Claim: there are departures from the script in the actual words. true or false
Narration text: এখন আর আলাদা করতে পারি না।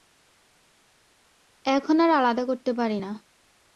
false